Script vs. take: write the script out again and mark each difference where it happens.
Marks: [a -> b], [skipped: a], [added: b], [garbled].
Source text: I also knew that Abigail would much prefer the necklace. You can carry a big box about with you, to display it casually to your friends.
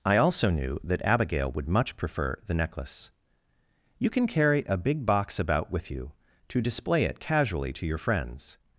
I also knew that Abigail would much prefer the necklace. You can carry a big box about with you, to display it casually to your friends.